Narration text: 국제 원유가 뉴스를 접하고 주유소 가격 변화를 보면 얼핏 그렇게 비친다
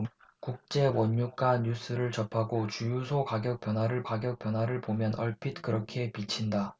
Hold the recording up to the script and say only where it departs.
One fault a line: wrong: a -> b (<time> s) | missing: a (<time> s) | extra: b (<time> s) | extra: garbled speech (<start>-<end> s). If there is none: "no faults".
extra: 가격 변화를 (4.0 s)